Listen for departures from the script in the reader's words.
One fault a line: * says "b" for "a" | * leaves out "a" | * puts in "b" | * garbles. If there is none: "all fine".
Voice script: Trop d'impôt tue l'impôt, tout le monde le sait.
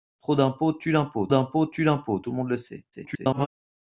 * puts in "d'impôt tue l'impôt"
* garbles